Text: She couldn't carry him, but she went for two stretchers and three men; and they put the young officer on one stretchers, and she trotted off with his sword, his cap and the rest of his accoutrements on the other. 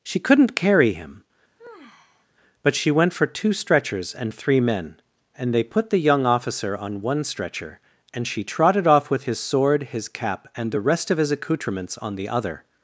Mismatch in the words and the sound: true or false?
true